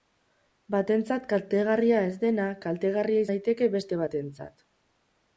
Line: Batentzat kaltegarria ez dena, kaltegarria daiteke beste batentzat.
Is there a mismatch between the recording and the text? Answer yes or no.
no